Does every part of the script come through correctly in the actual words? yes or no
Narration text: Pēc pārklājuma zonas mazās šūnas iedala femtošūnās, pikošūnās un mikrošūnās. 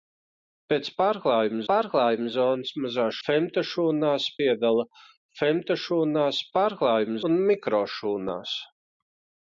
no